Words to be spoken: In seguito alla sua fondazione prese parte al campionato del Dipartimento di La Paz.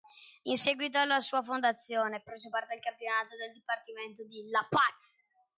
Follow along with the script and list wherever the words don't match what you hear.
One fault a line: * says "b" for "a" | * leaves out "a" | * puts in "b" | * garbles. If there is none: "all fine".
all fine